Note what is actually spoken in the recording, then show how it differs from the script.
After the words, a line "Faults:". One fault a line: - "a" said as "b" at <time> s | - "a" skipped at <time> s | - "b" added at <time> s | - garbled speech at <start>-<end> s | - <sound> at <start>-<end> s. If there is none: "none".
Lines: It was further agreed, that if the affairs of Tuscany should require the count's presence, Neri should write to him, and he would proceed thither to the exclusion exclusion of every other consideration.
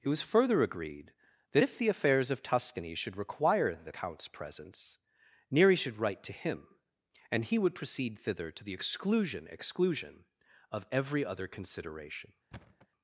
It was further agreed, that if the affairs of Tuscany should require the count's presence, Neri should write to him, and he would proceed thither to the exclusion exclusion of every other consideration.
Faults:
- thud at 12.5-12.9 s